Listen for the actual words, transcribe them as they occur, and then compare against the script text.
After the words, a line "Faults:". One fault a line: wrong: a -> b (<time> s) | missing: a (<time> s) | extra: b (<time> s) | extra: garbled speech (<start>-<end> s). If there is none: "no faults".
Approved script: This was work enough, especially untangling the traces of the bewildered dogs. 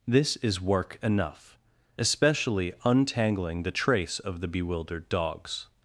This is work enough, especially untangling the trace of the bewildered dogs.
Faults:
wrong: was -> is (0.4 s)
wrong: traces -> trace (3.7 s)